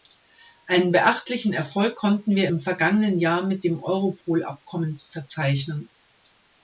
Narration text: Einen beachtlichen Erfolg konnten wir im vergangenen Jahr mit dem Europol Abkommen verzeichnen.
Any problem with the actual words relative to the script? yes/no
no